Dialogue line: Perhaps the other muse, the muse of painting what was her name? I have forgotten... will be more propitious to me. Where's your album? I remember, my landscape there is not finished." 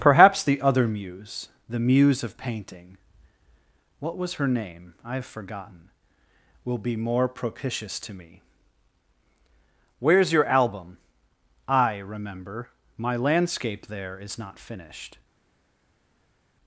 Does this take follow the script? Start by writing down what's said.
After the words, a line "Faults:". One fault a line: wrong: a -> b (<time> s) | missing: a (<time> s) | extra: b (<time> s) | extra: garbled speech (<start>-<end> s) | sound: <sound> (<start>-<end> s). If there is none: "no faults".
Perhaps the other muse, the muse of painting what was her name? I have forgotten... will be more propitious to me. Where's your album? I remember, my landscape there is not finished."
Faults:
no faults